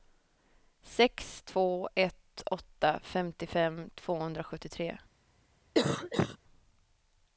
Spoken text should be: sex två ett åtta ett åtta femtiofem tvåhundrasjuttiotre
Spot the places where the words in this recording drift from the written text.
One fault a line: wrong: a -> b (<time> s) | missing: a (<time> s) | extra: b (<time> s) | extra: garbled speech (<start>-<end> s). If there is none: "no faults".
missing: ett åtta (3.0 s)